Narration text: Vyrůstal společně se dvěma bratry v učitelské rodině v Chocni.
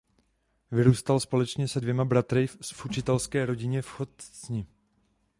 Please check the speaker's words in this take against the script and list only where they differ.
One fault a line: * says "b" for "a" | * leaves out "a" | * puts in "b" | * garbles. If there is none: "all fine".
all fine